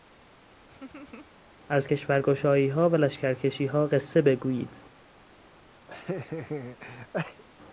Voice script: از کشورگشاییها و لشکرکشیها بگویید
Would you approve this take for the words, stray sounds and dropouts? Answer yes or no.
no